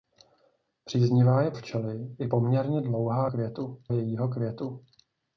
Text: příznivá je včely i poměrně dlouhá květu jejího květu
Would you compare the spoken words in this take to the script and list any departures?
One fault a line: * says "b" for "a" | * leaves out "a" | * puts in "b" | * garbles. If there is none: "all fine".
all fine